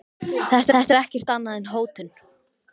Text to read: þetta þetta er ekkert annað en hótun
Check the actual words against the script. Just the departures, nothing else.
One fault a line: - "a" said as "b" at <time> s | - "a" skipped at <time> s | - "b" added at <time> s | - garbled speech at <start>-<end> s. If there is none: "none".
none